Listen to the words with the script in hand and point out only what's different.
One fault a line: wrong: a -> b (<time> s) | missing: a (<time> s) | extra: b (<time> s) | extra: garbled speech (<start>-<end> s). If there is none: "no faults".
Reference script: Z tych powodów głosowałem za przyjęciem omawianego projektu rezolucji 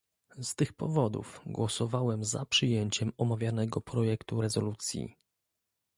no faults